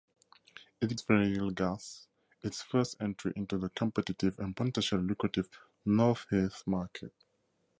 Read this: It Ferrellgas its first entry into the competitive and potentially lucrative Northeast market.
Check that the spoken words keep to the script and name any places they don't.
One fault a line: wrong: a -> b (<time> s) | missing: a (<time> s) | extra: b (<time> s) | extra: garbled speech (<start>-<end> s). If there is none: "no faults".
no faults